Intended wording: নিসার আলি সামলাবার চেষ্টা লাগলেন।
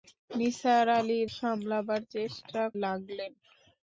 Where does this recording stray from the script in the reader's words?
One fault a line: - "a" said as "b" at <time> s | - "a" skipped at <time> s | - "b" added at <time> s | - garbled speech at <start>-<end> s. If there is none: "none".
none